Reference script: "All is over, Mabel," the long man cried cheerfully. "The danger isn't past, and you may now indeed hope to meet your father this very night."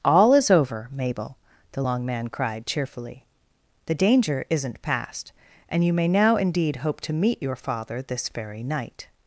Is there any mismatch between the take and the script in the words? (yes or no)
no